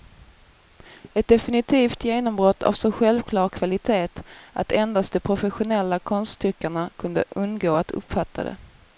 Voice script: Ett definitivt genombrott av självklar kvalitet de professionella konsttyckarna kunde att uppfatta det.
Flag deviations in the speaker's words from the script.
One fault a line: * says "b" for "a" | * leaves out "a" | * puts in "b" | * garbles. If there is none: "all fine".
* puts in "så"
* puts in "att endast"
* puts in "undgå"